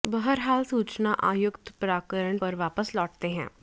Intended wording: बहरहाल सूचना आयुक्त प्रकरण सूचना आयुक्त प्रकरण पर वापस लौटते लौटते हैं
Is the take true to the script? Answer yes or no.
no